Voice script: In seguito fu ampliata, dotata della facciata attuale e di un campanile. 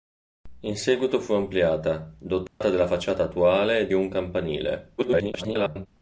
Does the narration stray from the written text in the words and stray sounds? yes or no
yes